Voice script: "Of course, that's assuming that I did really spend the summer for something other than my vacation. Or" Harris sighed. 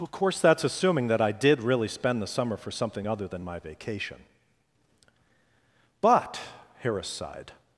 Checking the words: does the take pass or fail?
fail